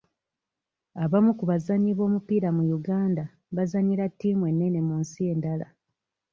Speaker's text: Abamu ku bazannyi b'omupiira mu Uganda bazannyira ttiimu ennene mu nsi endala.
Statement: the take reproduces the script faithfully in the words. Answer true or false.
true